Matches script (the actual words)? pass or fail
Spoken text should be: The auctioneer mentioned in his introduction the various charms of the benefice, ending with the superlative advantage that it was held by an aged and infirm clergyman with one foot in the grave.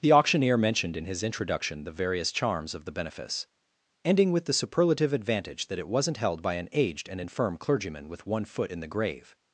fail